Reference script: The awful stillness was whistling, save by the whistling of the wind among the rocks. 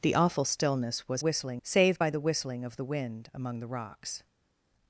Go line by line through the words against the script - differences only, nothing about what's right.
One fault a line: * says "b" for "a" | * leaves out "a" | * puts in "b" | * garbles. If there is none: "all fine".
all fine